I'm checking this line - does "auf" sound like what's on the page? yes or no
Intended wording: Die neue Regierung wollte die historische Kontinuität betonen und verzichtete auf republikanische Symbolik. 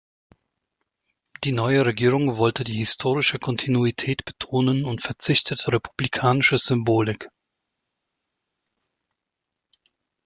no